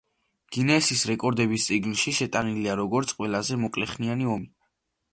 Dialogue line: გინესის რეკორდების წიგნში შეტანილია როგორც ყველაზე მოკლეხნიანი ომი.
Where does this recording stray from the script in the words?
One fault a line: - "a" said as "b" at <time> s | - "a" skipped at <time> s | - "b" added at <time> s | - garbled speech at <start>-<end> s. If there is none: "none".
none